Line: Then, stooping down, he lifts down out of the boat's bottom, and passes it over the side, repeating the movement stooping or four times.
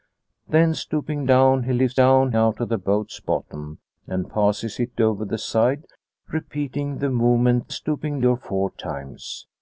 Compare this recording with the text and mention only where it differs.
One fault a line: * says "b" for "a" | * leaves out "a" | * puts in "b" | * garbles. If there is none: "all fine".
all fine